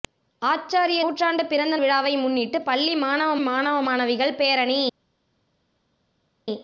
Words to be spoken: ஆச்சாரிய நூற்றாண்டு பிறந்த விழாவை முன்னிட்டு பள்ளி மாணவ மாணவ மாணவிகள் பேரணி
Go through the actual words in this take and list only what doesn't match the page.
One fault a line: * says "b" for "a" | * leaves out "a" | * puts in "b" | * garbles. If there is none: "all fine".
all fine